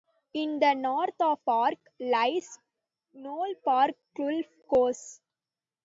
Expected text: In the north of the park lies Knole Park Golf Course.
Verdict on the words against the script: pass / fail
fail